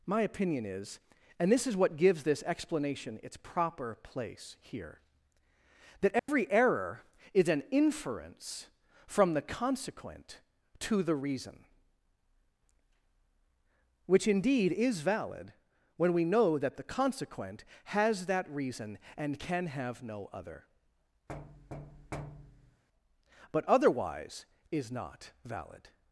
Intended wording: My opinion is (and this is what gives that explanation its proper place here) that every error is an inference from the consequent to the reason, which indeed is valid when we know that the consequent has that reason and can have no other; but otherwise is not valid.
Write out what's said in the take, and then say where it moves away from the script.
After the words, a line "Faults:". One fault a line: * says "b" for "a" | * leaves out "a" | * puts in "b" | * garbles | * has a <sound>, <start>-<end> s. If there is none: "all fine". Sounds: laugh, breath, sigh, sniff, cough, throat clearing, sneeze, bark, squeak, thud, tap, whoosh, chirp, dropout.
My opinion is (and this is what gives this explanation its proper place here) that every error is an inference from the consequent to the reason, which indeed is valid when we know that the consequent has that reason and can have no other; but otherwise is not valid.
Faults:
* says "this" for "that"
* has a dropout, 6.2-6.3 s
* has a thud, 21.3-22.8 s